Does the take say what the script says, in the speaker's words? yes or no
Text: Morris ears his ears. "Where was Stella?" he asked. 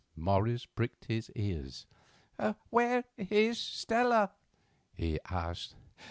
no